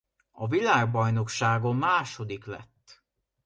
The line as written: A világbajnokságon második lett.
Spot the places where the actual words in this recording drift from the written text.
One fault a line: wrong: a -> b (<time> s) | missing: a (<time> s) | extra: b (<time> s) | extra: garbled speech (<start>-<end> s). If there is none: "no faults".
no faults